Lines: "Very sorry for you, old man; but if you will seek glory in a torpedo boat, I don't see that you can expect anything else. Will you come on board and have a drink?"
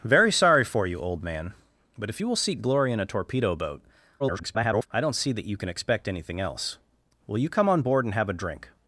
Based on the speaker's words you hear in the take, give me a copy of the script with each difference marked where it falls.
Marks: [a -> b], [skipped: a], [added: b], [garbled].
"Very sorry for you, old man; but if you will seek glory in a torpedo boat, [garbled] I don't see that you can expect anything else. Will you come on board and have a drink?"